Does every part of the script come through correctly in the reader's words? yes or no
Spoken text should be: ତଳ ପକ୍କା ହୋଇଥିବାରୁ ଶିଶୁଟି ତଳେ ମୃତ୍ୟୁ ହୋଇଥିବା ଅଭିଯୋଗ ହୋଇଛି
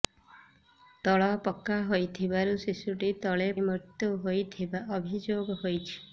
yes